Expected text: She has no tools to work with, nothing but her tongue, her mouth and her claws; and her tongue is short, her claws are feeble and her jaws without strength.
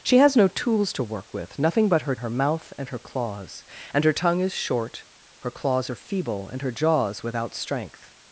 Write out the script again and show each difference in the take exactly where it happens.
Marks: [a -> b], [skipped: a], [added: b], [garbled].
She has no tools to work with, nothing but her [skipped: tongue,] her mouth and her claws; and her tongue is short, her claws are feeble and her jaws without strength.